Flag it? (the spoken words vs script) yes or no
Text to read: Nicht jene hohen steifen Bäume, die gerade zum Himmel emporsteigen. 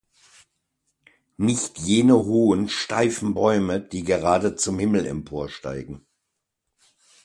no